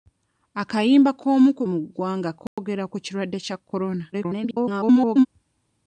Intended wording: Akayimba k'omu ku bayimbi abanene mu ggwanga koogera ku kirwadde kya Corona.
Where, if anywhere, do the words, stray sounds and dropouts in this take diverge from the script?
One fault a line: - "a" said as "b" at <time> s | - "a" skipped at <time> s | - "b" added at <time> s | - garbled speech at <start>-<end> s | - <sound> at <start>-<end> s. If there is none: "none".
- "bayimbi abanene" skipped at 1.6 s
- dropout at 2.5-2.6 s
- garbled speech at 4.1-5.3 s